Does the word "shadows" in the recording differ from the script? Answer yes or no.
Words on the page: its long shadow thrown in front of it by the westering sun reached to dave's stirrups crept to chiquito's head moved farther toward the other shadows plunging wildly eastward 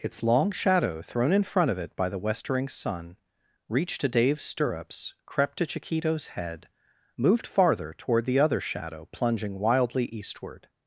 yes